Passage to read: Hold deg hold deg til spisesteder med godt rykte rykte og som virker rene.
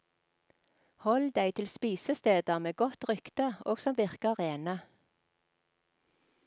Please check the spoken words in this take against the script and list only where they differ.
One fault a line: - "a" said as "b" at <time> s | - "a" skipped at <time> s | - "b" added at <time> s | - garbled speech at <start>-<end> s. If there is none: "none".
- "hold deg" skipped at 1.5 s
- "rykte" skipped at 3.5 s